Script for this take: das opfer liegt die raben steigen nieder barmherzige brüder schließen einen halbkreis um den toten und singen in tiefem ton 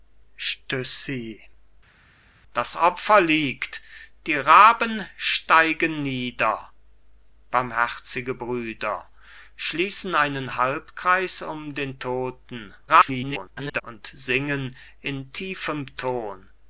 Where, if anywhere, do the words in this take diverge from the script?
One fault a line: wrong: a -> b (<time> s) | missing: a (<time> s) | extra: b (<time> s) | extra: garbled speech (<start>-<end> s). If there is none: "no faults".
extra: garbled speech (12.9-13.8 s)